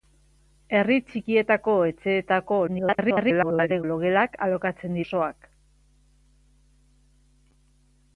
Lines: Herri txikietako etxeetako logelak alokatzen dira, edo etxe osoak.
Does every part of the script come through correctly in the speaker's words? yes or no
no